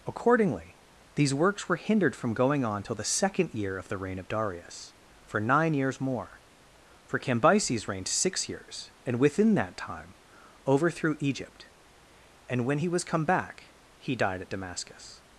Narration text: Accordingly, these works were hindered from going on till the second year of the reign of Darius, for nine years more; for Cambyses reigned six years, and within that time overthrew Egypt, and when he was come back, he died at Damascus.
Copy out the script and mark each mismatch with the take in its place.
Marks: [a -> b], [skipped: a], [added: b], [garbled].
Accordingly, these works were hindered from going on till the second year of the reign of Darius, for nine years more; for Cambyses reigned six years, and within that time overthrew Egypt, and when he was come back, he died at Damascus.